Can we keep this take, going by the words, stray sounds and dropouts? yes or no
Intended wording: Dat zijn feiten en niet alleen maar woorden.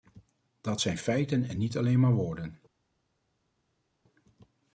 yes